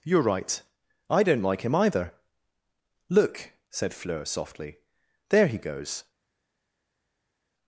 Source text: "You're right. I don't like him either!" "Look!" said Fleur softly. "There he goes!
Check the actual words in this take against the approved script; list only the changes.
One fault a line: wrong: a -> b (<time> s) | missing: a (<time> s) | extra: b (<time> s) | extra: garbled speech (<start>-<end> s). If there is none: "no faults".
no faults